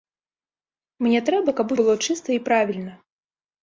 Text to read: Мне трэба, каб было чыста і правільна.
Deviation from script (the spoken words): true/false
false